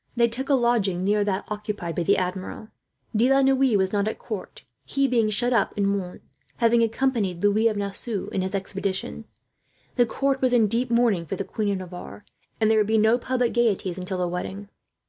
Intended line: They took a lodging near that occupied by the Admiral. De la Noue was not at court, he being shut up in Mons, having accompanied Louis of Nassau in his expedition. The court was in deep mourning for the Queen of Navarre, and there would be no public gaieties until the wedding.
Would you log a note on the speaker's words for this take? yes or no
no